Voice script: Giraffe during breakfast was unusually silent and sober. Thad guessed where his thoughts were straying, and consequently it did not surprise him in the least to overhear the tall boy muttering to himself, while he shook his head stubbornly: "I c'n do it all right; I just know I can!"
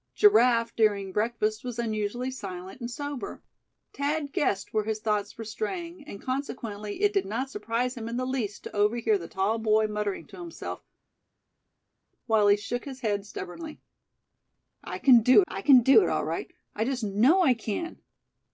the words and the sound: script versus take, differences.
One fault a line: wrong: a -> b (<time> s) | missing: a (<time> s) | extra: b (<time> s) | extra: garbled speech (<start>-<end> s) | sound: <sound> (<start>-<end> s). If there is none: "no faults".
extra: I c'n do (15.5 s)